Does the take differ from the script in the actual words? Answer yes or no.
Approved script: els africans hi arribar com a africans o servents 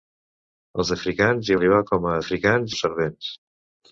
no